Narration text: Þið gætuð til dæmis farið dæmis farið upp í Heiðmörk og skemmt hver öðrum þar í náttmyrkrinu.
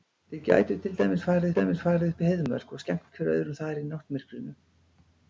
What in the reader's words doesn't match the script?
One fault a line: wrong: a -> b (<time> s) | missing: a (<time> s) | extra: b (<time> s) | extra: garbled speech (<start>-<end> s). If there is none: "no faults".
no faults